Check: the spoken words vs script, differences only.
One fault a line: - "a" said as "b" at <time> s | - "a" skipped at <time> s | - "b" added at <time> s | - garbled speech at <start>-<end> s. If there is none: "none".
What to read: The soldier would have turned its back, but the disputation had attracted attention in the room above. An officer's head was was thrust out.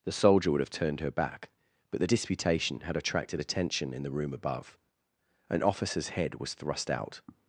- "its" said as "her" at 1.0 s
- "was" skipped at 6.5 s